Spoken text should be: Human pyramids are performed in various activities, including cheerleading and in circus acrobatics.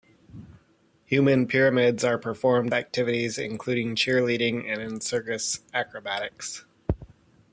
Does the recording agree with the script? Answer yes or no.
no